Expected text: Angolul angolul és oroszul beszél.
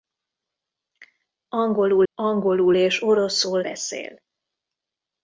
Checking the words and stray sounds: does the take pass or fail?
pass